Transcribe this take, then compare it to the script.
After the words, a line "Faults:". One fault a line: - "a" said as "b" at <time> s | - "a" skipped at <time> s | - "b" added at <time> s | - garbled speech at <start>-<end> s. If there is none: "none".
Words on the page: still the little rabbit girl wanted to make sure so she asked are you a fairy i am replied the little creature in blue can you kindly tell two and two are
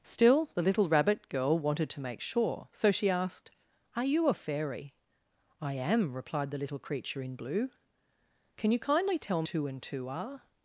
still the little rabbit girl wanted to make sure so she asked are you a fairy i am replied the little creature in blue can you kindly tell two and two are
Faults:
none